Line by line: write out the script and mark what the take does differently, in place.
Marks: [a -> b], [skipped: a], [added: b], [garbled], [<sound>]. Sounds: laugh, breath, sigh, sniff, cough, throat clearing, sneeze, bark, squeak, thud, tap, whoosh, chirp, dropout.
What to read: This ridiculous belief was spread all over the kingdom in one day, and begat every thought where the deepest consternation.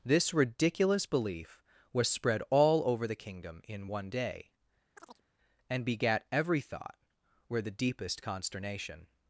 This ridiculous belief was spread all over the kingdom in one day, [chirp] and begat every thought where the deepest consternation.